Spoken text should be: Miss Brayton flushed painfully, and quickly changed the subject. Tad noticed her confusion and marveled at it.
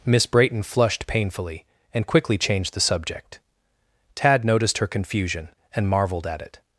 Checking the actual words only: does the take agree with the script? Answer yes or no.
yes